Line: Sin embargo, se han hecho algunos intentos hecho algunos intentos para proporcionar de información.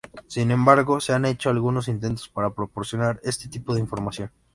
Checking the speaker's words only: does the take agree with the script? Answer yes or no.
no